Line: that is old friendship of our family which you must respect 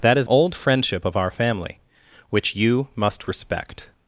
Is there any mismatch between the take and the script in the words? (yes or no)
no